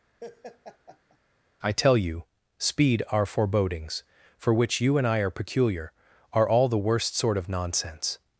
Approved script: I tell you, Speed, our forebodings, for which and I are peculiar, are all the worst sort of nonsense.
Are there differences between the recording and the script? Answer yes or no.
yes